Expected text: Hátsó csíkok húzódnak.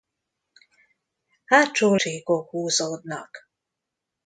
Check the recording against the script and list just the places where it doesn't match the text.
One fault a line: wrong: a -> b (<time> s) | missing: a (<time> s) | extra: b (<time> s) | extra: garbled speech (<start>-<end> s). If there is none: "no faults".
no faults